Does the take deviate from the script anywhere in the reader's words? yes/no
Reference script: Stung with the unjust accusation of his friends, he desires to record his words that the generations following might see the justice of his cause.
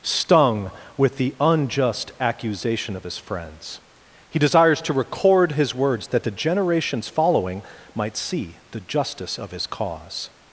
no